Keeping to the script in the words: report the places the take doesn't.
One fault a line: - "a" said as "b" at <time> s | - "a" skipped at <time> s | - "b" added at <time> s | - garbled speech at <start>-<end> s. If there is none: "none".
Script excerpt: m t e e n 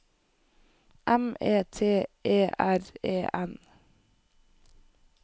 - "e" added at 1.4 s
- "r" added at 2.6 s